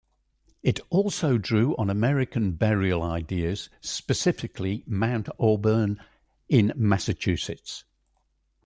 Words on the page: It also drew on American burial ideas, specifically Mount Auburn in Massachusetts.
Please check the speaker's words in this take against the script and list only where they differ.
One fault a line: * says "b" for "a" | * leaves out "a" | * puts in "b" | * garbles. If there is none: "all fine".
all fine